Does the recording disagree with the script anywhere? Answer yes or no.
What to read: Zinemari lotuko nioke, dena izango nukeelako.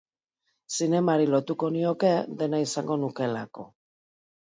no